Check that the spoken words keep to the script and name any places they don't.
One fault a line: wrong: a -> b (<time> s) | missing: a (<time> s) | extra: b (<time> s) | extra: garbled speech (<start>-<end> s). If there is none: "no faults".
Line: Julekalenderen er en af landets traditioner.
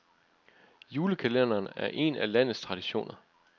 no faults